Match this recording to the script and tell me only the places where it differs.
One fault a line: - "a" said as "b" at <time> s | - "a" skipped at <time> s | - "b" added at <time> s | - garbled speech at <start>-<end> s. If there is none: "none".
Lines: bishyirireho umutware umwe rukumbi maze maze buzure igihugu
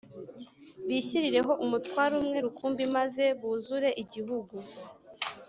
- "maze" skipped at 3.2 s